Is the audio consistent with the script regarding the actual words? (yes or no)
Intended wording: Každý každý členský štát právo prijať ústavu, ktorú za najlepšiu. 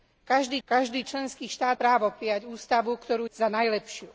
yes